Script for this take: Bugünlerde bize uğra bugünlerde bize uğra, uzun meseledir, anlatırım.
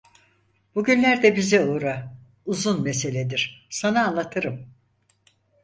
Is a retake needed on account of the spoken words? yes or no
yes